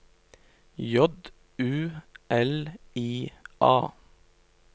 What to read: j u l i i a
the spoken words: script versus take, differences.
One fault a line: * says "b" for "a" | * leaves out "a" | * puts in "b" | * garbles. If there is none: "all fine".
* leaves out "i"